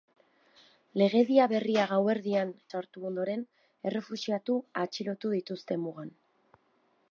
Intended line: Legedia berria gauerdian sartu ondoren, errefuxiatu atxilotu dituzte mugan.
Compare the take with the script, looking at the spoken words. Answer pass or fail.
pass